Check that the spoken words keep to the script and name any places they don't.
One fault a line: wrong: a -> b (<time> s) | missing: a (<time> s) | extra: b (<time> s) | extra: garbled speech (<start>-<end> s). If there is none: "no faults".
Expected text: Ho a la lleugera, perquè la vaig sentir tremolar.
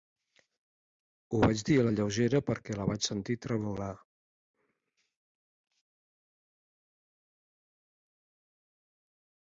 extra: vaig dir (1.4 s)